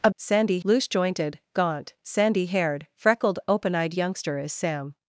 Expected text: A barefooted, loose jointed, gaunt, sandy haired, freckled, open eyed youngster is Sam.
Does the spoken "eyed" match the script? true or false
true